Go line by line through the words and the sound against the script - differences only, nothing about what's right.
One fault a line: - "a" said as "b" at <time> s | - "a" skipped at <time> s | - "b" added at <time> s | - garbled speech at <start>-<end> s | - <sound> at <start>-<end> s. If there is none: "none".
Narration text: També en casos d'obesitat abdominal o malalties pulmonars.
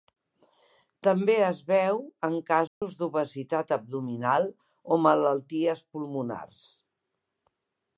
- "es veu" added at 1.5 s
- dropout at 2.7-2.8 s